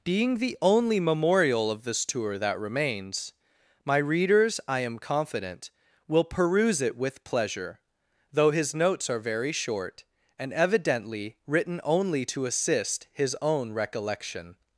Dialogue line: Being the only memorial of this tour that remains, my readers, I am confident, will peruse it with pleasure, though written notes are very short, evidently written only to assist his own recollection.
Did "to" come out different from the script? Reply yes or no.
no